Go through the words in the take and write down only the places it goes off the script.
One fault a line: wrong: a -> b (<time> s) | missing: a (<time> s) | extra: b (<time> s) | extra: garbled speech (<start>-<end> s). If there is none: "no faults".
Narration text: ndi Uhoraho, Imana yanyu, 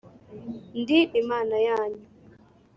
missing: Uhoraho (1.0 s)